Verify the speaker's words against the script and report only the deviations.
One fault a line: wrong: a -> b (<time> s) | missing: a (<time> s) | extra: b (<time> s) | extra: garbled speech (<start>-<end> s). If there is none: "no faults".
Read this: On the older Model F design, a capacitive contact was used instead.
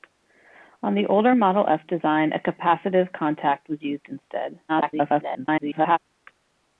extra: garbled speech (4.7-6.0 s)